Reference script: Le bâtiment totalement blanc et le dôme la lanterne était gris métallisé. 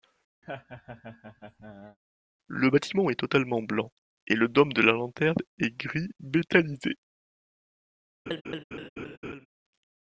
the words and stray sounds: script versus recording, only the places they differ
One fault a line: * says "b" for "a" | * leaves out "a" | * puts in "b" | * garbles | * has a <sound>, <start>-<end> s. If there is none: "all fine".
* has a laugh, 0.4-2.0 s
* puts in "est"
* puts in "de"
* says "est" for "était"
* has a laugh, 8.3-9.5 s